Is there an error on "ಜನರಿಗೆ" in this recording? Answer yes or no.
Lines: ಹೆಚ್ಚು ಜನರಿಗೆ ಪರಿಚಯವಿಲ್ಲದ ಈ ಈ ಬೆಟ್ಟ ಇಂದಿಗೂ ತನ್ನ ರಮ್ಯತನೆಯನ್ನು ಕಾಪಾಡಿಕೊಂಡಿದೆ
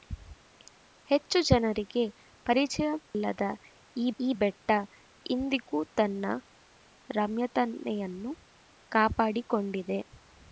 no